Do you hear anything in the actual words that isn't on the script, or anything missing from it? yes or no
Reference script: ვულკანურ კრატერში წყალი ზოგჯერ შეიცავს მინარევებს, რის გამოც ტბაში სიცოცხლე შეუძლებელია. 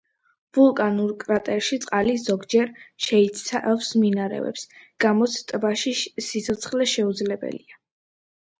yes